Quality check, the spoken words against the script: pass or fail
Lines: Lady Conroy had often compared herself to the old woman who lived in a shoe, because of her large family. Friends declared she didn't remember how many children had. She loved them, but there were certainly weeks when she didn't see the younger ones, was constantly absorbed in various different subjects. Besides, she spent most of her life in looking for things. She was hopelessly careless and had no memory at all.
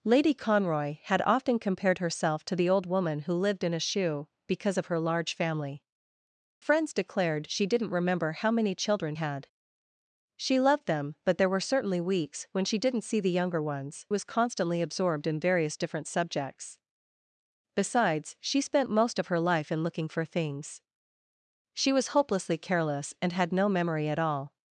pass